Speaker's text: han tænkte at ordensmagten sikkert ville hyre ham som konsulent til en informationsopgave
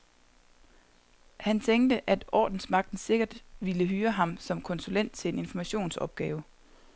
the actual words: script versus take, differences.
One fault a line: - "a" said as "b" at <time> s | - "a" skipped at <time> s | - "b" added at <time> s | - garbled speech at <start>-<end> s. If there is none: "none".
none